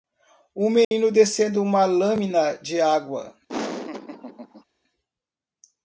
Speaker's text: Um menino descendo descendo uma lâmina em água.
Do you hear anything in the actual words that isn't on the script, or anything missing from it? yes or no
yes